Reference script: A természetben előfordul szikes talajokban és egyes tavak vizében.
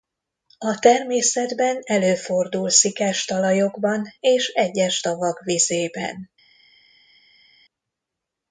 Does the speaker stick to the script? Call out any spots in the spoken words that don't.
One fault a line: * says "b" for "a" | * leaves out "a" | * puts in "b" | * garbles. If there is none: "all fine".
all fine